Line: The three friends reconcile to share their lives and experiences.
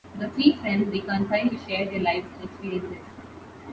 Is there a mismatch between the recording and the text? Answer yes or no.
no